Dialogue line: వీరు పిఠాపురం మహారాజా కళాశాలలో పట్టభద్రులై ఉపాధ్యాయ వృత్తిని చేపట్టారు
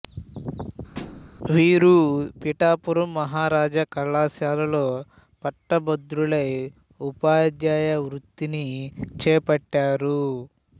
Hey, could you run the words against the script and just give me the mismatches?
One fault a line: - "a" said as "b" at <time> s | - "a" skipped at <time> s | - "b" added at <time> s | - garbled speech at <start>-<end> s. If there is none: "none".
none